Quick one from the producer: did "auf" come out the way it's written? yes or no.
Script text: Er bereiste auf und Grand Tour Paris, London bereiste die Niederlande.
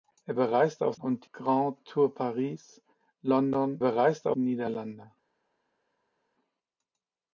yes